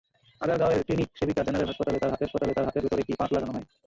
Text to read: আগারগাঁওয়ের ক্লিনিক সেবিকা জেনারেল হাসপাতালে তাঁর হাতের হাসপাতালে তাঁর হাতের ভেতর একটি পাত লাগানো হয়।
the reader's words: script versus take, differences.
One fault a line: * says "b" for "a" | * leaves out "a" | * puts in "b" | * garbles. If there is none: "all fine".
all fine